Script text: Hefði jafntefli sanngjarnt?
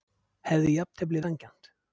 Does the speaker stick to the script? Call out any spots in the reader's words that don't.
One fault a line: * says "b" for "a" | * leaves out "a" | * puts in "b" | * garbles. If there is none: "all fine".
all fine